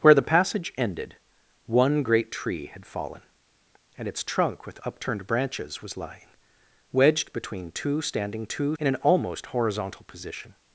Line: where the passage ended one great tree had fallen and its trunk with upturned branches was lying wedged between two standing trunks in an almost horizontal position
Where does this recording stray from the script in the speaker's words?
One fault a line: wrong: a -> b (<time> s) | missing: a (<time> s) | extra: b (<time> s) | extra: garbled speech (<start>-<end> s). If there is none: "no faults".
wrong: trunks -> two (8.4 s)